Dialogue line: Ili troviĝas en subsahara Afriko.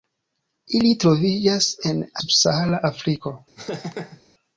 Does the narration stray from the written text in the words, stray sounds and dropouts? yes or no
yes